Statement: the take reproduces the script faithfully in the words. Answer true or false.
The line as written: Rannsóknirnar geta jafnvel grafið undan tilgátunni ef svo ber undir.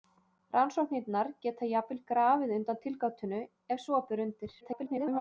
false